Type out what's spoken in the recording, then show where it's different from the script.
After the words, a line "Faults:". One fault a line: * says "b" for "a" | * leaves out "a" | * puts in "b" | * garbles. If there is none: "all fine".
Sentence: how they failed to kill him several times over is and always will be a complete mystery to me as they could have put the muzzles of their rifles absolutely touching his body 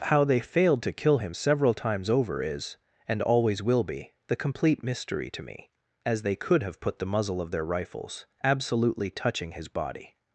how they failed to kill him several times over is and always will be the complete mystery to me as they could have put the muzzle of their rifles absolutely touching his body
Faults:
* says "the" for "a"
* says "muzzle" for "muzzles"